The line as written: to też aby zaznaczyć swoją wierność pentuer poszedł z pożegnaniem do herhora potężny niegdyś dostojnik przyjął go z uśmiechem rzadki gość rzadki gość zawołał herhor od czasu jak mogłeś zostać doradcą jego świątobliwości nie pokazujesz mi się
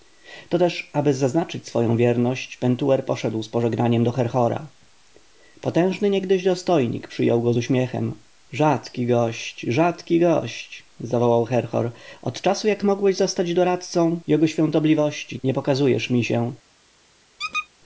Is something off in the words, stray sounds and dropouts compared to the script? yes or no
yes